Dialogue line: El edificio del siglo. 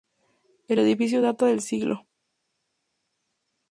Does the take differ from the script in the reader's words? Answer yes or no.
yes